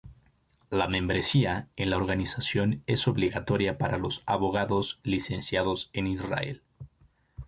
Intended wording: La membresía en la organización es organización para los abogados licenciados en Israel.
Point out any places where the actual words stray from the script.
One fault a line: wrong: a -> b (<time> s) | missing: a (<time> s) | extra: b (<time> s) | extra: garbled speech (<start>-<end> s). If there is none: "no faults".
wrong: organización -> obligatoria (3.1 s)